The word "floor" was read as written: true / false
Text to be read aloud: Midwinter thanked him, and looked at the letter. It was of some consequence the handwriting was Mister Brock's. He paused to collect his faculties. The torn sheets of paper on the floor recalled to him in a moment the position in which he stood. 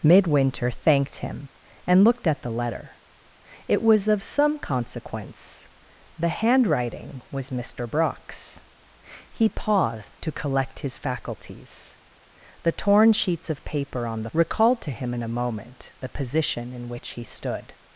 false